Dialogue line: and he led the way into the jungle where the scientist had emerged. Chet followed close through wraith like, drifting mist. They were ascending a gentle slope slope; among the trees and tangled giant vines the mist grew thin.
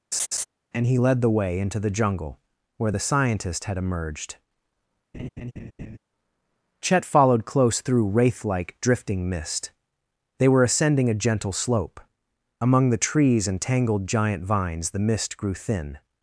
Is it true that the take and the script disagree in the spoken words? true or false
true